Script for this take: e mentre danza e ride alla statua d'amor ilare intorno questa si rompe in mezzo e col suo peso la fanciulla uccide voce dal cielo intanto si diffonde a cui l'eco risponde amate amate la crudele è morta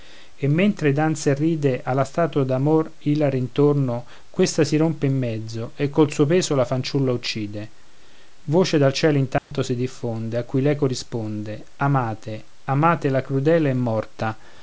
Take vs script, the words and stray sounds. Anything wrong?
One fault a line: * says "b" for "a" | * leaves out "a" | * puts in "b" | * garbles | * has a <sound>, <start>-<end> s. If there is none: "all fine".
* has a dropout, 9.4-9.5 s